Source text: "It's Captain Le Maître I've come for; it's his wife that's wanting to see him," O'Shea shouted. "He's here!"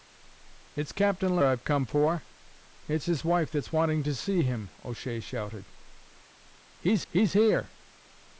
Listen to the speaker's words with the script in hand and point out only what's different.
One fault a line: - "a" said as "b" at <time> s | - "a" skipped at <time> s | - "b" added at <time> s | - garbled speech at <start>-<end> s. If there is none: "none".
- "Maître" skipped at 1.4 s
- "he's" added at 7.1 s